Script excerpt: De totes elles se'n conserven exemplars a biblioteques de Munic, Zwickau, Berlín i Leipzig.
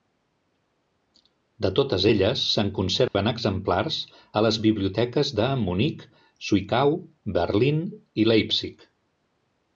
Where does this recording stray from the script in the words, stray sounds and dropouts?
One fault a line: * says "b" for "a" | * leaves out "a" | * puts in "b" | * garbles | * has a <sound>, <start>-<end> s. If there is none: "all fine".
* has a dropout, 3.1-3.1 s
* puts in "les"